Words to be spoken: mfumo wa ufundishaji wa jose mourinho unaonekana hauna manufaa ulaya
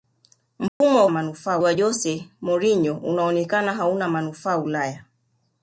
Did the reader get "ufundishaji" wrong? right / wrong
wrong